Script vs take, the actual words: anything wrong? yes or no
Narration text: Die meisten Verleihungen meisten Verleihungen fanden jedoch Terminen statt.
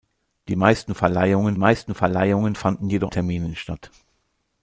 no